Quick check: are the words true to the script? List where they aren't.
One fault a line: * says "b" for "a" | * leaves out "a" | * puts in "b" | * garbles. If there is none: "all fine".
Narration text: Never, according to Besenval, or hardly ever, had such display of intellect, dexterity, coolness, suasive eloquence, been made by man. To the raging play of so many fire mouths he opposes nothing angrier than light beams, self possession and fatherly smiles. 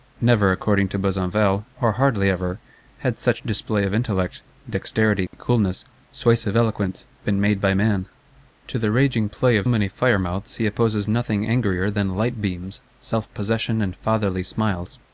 * leaves out "so"